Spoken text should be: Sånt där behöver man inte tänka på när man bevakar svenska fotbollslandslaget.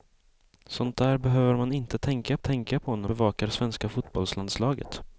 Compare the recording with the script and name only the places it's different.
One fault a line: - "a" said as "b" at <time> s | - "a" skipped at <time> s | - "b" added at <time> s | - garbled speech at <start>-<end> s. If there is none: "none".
- "tänka" added at 2.4 s
- "man" skipped at 3.1 s